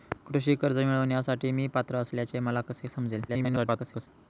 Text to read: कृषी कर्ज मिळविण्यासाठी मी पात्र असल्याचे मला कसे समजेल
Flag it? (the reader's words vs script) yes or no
yes